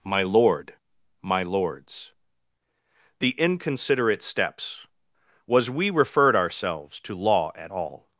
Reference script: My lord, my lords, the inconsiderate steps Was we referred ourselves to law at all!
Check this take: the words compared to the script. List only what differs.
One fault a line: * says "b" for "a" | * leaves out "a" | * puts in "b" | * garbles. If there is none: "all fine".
all fine